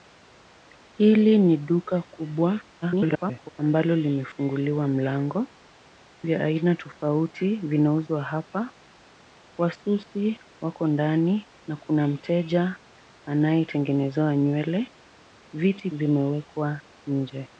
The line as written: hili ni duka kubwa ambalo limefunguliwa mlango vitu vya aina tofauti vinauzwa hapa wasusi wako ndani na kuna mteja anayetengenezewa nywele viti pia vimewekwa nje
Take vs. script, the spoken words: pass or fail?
fail